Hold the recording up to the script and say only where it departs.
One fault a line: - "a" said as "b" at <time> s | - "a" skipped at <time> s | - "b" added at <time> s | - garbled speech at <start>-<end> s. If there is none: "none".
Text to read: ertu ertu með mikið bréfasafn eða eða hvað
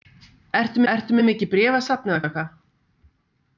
none